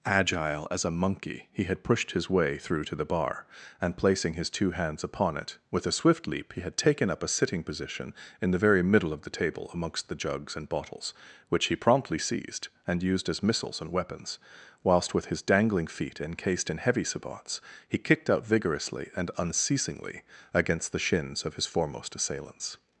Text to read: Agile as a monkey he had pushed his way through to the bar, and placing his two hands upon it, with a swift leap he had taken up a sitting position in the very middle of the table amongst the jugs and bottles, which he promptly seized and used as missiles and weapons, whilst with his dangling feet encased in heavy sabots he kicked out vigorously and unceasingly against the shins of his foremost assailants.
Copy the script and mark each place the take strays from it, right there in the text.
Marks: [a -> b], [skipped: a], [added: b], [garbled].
Agile as a monkey he had pushed his way through to the bar, and placing his two hands upon it, with a swift leap he had taken up a sitting position in the very middle of the table amongst the jugs and bottles, which he promptly seized and used as missiles and weapons, whilst with his dangling feet encased in heavy sabots he kicked out vigorously and unceasingly against the shins of his foremost assailants.